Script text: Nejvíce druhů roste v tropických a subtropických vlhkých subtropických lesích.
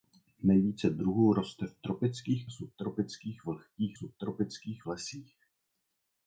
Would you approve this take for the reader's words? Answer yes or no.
yes